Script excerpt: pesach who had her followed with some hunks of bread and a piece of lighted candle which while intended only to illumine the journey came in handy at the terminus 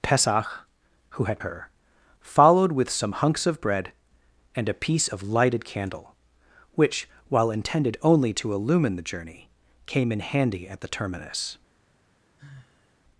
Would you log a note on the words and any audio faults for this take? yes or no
yes